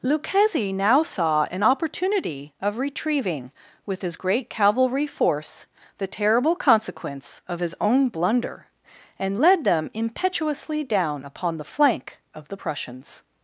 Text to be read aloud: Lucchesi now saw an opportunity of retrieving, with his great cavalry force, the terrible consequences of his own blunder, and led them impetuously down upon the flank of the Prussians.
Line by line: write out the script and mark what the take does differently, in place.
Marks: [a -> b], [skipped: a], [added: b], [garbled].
Lucchesi now saw an opportunity of retrieving, with his great cavalry force, the terrible [consequences -> consequence] of his own blunder, and led them impetuously down upon the flank of the Prussians.